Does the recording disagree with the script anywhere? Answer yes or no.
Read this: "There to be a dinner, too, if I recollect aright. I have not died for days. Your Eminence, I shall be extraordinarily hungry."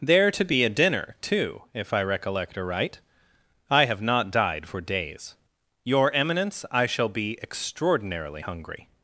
no